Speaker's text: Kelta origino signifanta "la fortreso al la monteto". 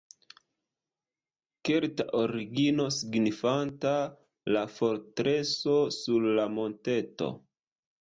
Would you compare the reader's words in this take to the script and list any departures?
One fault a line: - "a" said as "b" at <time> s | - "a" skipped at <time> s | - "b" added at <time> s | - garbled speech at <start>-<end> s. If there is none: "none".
- "al" said as "sur" at 6.0 s